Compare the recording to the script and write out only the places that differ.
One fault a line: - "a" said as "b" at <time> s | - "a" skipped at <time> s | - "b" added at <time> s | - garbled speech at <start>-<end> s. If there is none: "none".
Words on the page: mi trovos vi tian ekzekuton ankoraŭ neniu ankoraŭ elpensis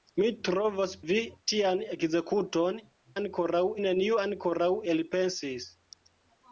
none